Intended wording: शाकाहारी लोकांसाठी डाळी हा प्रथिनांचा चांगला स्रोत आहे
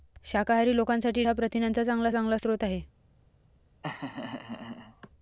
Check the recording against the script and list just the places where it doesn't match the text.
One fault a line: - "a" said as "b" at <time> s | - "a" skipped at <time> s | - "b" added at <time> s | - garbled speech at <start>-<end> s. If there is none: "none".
- "डाळी" skipped at 1.2 s
- "चांगला" added at 2.1 s